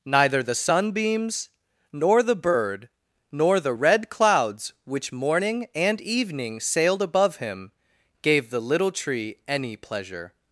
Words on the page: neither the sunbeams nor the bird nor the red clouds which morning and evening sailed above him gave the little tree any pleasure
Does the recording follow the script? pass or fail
pass